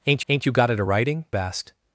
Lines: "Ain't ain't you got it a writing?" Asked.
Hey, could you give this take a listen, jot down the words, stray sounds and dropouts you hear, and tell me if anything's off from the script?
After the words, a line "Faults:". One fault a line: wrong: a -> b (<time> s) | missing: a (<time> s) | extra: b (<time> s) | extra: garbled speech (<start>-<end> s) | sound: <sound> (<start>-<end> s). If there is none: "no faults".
"Ain't ain't you got it a writing?" Asked.
Faults:
no faults